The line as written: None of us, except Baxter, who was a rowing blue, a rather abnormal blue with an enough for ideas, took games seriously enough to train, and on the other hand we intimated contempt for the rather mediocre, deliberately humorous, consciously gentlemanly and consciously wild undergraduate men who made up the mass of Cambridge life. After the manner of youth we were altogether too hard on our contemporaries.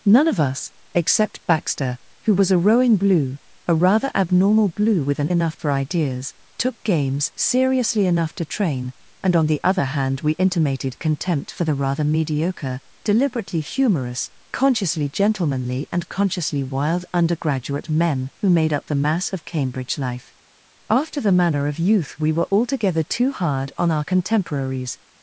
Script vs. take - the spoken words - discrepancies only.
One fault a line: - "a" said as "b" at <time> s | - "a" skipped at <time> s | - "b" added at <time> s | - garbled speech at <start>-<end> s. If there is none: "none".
none